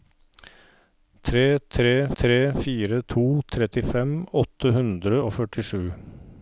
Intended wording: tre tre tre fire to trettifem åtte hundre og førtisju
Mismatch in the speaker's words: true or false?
false